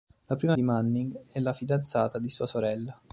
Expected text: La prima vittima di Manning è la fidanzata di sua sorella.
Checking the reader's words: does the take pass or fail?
fail